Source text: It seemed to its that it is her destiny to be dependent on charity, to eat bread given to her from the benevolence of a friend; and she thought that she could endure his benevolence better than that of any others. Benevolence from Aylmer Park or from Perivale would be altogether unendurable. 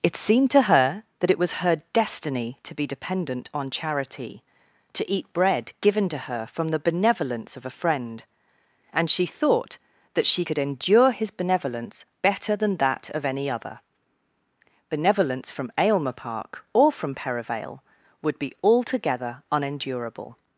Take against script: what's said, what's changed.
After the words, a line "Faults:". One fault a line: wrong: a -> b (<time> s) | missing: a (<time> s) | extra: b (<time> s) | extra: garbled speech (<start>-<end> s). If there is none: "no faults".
It seemed to her that it was her destiny to be dependent on charity, to eat bread given to her from the benevolence of a friend; and she thought that she could endure his benevolence better than that of any other. Benevolence from Aylmer Park or from Perivale would be altogether unendurable.
Faults:
wrong: its -> her (0.6 s)
wrong: is -> was (1.4 s)
wrong: others -> other (13.5 s)